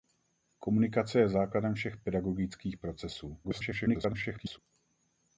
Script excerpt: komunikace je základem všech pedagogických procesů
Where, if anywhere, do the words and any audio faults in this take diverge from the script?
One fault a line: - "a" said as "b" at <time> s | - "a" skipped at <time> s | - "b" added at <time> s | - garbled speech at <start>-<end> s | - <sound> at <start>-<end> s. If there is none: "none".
- garbled speech at 3.4-4.6 s